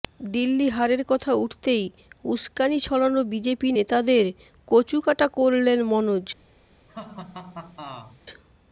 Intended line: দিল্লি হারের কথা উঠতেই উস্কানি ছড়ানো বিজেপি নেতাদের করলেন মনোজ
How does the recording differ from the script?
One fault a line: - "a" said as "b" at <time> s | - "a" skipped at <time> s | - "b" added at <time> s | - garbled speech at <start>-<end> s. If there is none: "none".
- "কচুকাটা" added at 4.7 s